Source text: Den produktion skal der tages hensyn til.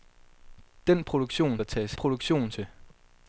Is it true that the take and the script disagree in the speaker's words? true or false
true